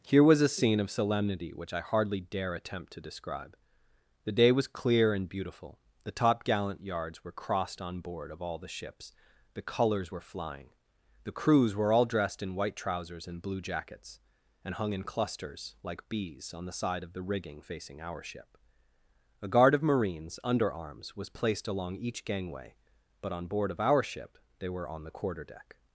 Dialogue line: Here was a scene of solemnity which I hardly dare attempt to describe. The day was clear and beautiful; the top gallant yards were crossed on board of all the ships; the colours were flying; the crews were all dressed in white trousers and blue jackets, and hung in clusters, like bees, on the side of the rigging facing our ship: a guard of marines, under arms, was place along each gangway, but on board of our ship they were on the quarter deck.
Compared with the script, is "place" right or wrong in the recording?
wrong